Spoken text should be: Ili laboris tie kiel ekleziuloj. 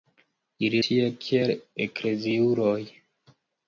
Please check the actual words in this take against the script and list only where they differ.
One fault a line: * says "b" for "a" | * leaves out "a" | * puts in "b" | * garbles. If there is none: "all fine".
* leaves out "laboris"